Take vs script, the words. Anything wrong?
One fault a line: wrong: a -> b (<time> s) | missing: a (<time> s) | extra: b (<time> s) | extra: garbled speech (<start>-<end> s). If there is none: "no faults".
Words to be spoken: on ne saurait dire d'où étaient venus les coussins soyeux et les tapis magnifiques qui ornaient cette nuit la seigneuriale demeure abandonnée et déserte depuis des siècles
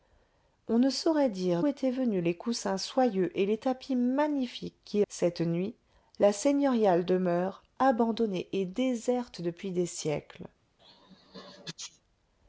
missing: d'où (1.6 s)
missing: ornaient (5.1 s)